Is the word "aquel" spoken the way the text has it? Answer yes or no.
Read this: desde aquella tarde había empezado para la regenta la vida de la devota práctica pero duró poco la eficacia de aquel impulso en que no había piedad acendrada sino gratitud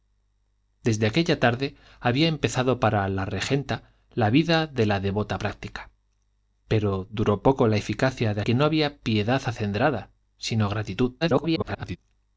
no